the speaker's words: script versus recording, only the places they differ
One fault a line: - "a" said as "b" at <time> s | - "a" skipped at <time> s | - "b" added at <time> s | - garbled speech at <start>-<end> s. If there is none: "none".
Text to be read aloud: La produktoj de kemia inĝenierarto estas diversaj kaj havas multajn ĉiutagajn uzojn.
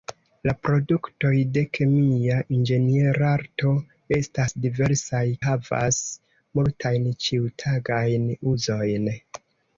- "kaj" skipped at 5.2 s